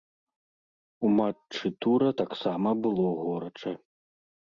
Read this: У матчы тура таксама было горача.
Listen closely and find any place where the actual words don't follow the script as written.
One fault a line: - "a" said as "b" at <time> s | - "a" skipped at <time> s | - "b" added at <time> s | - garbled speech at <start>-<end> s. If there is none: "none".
none